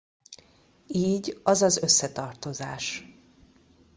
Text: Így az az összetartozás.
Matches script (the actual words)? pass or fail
pass